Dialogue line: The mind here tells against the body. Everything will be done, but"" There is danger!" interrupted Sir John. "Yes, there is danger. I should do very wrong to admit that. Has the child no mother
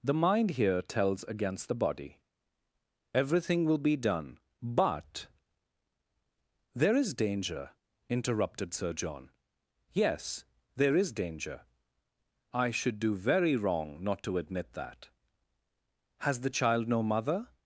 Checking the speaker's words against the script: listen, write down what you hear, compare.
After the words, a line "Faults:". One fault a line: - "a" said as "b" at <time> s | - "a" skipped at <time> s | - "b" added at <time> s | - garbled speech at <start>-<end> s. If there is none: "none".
The mind here tells against the body. Everything will be done, but"" There is danger!" interrupted Sir John. "Yes, there is danger. I should do very wrong not to admit that. Has the child no mother
Faults:
- "not" added at 14.0 s